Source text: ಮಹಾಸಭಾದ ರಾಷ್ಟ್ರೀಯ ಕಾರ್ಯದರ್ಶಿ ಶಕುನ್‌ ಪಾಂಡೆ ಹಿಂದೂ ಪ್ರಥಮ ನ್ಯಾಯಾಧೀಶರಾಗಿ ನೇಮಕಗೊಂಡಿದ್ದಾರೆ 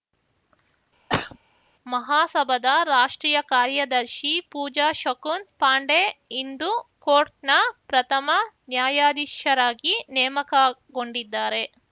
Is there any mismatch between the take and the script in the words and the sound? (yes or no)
yes